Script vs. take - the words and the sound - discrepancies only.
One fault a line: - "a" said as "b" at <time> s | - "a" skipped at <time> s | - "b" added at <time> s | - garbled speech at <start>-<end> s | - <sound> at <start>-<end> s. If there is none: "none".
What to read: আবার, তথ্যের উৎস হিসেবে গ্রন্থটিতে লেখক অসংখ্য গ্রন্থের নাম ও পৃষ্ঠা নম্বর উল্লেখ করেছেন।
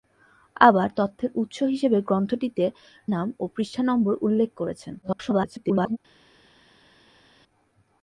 - "লেখক অসংখ্য গ্রন্থের" skipped at 2.6 s
- garbled speech at 5.0-6.0 s